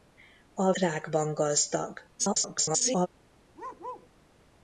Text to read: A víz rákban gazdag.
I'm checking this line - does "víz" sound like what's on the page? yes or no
no